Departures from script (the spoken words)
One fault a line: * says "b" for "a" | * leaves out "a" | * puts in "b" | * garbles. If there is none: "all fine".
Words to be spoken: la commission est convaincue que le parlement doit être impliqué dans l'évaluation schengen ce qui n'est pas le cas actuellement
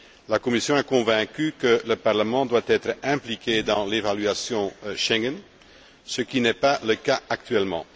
all fine